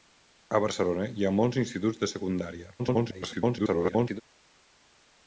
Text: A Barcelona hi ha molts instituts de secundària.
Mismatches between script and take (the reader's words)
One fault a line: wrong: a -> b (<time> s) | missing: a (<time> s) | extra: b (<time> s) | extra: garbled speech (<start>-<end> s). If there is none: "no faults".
extra: garbled speech (2.8-4.2 s)